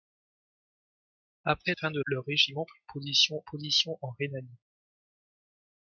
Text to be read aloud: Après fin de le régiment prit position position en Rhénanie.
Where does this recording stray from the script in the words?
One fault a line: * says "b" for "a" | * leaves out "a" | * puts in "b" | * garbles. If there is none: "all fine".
all fine